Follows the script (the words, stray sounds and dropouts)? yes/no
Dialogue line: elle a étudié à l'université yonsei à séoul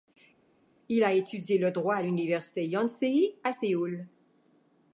no